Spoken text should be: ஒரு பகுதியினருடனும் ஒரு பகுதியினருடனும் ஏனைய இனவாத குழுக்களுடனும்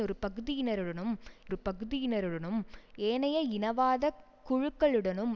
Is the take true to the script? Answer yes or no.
yes